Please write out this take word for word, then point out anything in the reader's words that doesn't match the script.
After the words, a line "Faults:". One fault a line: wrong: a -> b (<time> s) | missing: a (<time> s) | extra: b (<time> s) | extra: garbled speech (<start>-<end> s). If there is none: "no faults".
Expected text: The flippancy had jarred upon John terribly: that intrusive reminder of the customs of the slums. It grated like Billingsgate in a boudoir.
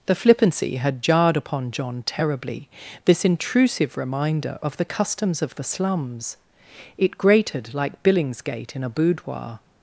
The flippancy had jarred upon John terribly: this intrusive reminder of the customs of the slums. It grated like Billingsgate in a boudoir.
Faults:
wrong: that -> this (3.0 s)